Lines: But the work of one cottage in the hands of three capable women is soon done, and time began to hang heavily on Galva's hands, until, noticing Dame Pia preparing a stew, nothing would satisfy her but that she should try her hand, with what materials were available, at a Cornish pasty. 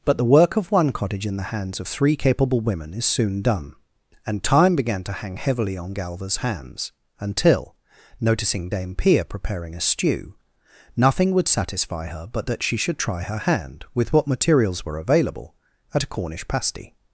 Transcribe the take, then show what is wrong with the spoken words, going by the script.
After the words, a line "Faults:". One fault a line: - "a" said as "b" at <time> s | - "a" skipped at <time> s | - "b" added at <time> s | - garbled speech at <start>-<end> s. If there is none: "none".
But the work of one cottage in the hands of three capable women is soon done, and time began to hang heavily on Galva's hands, until, noticing Dame Pia preparing a stew, nothing would satisfy her but that she should try her hand, with what materials were available, at a Cornish pasty.
Faults:
none